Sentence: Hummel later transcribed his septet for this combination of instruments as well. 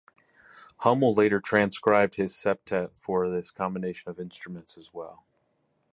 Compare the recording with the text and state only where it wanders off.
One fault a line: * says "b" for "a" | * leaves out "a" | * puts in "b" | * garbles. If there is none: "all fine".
all fine